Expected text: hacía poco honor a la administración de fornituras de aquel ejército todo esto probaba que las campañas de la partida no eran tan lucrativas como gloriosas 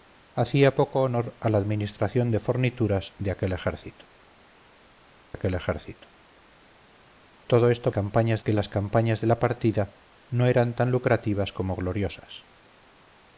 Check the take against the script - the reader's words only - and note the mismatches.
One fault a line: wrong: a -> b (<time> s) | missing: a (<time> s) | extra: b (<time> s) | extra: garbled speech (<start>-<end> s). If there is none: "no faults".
extra: aquel ejército (5.3 s)
wrong: probaba -> campañas (7.9 s)